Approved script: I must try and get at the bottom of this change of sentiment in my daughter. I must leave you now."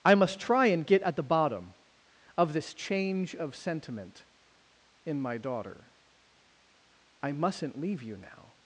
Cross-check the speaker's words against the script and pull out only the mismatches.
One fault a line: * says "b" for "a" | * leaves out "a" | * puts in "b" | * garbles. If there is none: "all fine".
* says "mustn't" for "must"